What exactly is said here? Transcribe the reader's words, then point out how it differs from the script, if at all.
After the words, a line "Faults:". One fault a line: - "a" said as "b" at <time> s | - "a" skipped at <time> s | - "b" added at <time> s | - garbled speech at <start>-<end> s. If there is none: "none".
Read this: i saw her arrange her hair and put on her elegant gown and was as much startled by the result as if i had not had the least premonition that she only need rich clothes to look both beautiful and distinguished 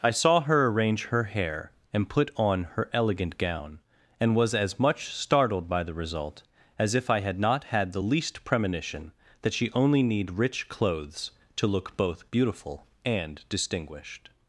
i saw her arrange her hair and put on her elegant gown and was as much startled by the result as if i had not had the least premonition that she only need rich clothes to look both beautiful and distinguished
Faults:
none